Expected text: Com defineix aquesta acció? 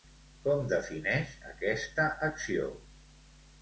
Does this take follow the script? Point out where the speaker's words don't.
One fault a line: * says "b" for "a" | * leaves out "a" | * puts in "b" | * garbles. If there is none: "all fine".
all fine